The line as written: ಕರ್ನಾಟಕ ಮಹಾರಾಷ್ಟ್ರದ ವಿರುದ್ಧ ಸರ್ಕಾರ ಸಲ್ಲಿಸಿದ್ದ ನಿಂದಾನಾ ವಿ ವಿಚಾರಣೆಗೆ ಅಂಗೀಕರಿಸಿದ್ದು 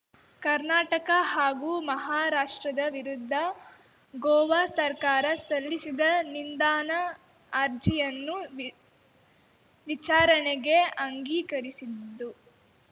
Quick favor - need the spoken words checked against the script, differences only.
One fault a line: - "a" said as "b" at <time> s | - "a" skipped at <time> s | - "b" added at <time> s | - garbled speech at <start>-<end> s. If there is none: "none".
- "ಹಾಗೂ" added at 1.3 s
- "ಗೋವಾ" added at 4.1 s
- "ಅರ್ಜಿಯನ್ನು" added at 7.5 s